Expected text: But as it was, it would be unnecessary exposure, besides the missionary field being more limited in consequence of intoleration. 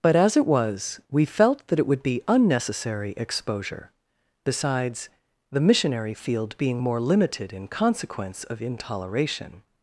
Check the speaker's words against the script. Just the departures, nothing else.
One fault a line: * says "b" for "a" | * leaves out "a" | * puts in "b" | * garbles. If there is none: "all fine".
* puts in "we felt that"